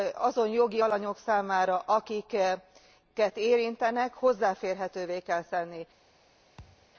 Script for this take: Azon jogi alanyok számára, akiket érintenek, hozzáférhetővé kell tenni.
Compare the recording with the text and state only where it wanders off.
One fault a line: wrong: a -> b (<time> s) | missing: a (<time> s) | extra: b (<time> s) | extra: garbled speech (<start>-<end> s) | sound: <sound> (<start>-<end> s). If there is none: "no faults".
sound: thud (6.6-6.9 s)